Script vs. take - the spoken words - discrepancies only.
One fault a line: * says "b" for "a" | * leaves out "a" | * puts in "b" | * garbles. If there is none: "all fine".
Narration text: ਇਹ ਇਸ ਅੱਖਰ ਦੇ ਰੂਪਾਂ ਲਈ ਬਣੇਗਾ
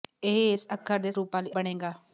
all fine